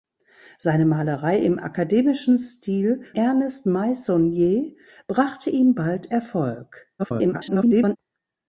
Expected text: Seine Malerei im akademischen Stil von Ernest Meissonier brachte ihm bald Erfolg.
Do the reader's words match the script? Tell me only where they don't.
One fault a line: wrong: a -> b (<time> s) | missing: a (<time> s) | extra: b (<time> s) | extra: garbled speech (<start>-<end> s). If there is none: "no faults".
missing: von (3.0 s)
extra: garbled speech (7.0-8.0 s)